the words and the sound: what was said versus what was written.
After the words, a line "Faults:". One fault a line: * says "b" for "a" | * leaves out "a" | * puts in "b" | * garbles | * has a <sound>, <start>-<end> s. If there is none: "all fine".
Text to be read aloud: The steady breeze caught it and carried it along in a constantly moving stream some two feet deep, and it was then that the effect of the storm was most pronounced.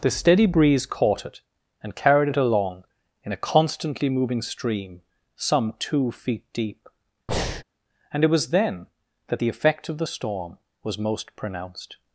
The steady breeze caught it and carried it along in a constantly moving stream some two feet deep, and it was then that the effect of the storm was most pronounced.
Faults:
* has a breath, 7.3-7.6 s